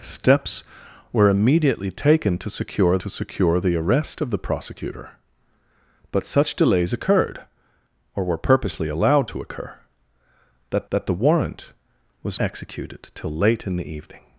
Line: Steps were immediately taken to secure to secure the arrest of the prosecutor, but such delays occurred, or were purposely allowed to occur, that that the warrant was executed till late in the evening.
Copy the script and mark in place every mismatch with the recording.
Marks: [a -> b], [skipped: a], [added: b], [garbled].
Steps were immediately taken to secure to secure the arrest of the prosecutor, but such delays occurred, or were purposely allowed to occur, that that the warrant was executed till late in the evening.